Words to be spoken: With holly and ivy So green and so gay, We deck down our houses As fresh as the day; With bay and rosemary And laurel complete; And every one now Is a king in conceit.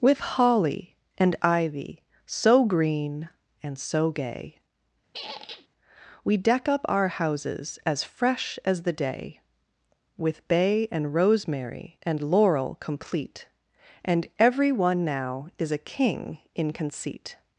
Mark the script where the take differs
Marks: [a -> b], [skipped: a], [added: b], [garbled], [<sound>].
With holly and ivy So green and so gay, [squeak] We deck [down -> up] our houses As fresh as the day; With bay and rosemary And laurel complete; And every one now Is a king in conceit.